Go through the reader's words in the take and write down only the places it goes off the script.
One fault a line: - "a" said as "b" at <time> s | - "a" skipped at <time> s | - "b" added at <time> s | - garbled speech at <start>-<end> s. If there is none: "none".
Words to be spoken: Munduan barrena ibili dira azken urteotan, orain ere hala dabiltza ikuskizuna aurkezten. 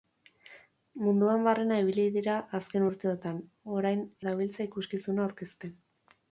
- "ere hala" skipped at 4.1 s